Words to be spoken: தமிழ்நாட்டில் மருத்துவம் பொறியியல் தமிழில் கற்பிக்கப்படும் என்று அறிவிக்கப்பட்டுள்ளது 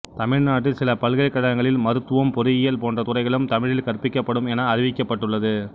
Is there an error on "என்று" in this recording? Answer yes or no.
yes